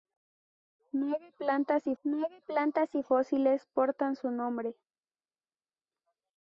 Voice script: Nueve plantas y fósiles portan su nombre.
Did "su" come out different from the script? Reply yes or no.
no